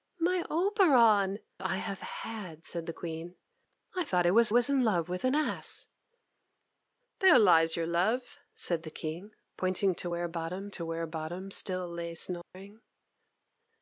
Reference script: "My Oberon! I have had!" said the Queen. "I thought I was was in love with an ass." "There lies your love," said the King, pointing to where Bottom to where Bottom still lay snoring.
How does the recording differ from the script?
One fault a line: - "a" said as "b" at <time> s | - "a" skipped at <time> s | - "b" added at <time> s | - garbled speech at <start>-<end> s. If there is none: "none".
none